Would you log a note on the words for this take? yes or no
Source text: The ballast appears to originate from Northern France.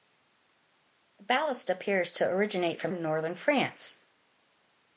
no